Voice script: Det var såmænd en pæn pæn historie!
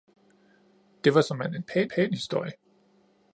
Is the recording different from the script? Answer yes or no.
no